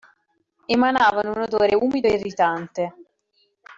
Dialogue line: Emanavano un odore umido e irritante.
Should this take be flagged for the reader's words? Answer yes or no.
no